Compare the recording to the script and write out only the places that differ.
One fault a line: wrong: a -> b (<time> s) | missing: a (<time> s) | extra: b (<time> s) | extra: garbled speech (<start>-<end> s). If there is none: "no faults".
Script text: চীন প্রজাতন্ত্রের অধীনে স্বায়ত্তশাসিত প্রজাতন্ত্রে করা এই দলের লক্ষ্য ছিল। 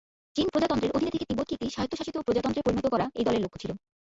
extra: থেকে তিব্বতকে একটি (1.1 s)
extra: পরিণত (2.6 s)